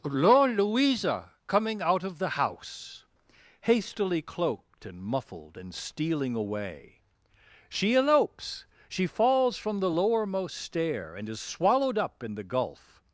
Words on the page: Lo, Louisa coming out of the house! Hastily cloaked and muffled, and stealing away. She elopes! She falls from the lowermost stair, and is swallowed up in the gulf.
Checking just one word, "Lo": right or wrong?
wrong